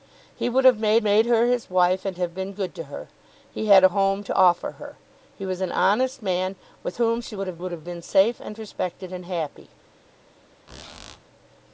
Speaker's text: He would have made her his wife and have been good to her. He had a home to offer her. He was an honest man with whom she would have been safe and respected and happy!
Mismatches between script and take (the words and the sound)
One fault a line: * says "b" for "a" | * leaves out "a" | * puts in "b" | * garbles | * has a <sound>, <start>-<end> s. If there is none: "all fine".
* puts in "made"
* puts in "would have"
* has a squeak, 10.7-11.2 s